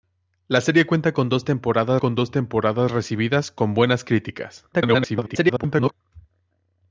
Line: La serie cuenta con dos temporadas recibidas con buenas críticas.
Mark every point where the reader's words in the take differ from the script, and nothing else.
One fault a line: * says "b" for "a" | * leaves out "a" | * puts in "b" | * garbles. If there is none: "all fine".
* puts in "con dos temporadas"
* garbles